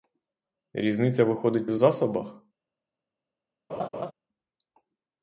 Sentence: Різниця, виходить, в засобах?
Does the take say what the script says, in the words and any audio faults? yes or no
no